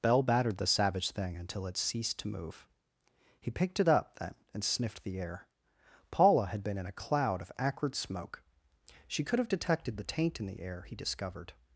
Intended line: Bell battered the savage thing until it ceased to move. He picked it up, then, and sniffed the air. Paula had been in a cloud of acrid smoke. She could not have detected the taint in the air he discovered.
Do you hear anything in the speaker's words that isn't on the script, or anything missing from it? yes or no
yes